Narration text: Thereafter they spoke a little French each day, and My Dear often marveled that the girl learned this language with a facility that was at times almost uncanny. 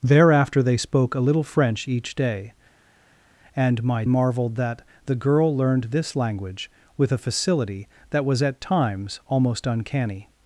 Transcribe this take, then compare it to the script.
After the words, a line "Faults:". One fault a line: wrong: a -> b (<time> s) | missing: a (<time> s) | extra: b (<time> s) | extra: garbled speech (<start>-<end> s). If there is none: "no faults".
Thereafter they spoke a little French each day, and My Marveled that the girl learned this language with a facility that was at times almost uncanny.
Faults:
missing: Dear often (4.0 s)